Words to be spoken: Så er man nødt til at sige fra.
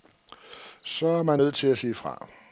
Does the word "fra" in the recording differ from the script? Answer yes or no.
no